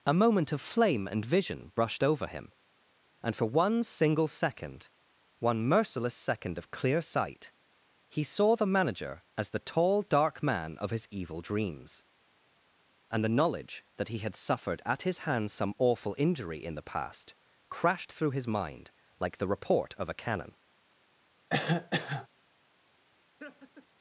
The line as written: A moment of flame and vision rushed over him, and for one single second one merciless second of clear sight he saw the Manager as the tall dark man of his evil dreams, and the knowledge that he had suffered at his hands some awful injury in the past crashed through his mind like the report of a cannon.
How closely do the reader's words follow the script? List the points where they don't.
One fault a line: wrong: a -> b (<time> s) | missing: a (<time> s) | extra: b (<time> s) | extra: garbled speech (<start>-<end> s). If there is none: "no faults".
wrong: rushed -> brushed (1.8 s)